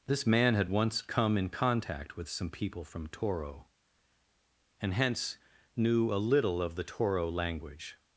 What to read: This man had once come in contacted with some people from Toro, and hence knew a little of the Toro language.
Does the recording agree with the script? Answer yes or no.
no